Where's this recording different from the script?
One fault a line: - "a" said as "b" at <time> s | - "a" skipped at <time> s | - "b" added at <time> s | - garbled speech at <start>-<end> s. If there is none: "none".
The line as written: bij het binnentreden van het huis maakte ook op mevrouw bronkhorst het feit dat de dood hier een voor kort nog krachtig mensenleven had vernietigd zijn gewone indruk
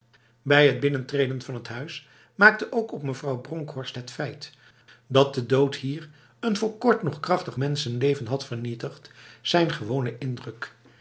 none